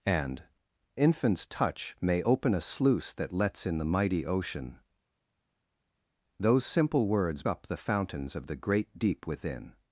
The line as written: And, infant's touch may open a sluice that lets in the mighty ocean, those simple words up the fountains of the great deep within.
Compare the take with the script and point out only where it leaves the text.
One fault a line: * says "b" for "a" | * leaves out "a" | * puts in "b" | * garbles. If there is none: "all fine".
all fine